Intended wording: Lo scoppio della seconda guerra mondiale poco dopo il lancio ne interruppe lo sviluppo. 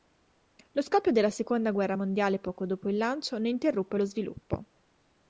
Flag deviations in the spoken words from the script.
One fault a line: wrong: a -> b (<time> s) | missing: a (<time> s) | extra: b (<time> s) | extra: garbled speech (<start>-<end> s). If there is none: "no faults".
no faults